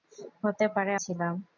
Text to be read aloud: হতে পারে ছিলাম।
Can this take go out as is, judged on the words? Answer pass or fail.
pass